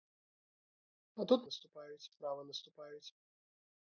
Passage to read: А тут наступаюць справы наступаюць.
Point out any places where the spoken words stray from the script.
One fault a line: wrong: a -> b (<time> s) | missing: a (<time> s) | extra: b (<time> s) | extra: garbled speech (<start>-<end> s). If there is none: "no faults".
no faults